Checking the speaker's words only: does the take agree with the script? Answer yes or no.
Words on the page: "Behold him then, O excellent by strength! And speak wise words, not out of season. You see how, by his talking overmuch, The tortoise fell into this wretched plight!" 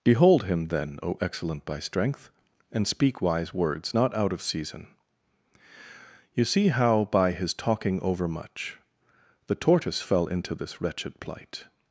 yes